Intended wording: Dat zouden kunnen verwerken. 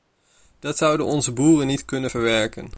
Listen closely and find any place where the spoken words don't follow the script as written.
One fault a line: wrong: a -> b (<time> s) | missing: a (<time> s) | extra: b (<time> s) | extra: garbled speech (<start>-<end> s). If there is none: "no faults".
extra: onze boeren niet (1.0 s)